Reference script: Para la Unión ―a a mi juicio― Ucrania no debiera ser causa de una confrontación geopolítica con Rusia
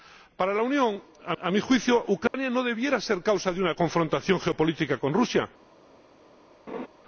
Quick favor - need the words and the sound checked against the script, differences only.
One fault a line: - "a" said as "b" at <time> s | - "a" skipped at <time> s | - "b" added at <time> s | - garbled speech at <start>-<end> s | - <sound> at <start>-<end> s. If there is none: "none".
- dropout at 2.3-2.3 s
- laugh at 6.7-6.9 s